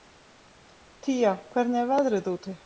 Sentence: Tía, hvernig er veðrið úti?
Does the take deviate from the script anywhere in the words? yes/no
no